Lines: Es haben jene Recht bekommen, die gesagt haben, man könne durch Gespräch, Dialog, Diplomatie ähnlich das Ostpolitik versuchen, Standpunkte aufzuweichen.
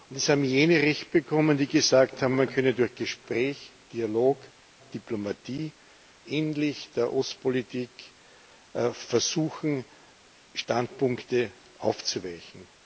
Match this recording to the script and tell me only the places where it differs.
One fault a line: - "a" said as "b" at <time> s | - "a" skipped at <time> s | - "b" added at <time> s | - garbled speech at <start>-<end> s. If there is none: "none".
- "das" said as "der" at 6.9 s